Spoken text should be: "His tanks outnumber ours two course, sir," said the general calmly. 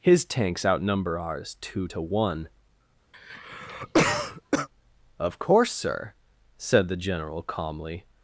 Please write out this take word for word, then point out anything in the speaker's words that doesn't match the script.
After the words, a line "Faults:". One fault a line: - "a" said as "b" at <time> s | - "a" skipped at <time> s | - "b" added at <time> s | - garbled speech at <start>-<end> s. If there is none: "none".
"His tanks outnumber ours two to one, of course, sir," said the general calmly.
Faults:
- "to one of" added at 1.9 s